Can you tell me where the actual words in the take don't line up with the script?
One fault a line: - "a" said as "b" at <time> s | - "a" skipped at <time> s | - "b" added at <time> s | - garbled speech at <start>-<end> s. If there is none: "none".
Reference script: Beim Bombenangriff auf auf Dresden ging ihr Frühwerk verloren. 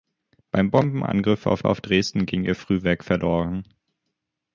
none